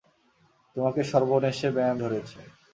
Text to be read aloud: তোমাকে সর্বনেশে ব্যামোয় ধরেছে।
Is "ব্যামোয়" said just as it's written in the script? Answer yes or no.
no